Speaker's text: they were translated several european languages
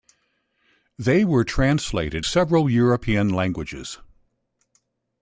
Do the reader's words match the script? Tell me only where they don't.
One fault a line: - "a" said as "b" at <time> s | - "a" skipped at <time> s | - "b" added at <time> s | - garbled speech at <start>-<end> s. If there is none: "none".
none